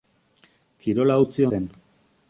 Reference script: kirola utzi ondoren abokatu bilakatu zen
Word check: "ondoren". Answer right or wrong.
wrong